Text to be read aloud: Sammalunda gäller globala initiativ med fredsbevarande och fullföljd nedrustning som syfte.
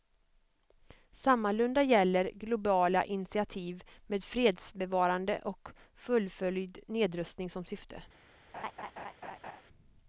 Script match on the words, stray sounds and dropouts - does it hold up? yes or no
no